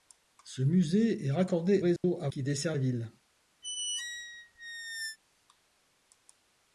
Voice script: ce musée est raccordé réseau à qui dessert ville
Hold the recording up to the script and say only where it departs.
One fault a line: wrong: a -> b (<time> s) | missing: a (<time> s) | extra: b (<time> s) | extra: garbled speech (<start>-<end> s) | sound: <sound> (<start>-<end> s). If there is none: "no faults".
sound: dropout (2.0-2.0 s)
sound: squeak (3.6-5.2 s)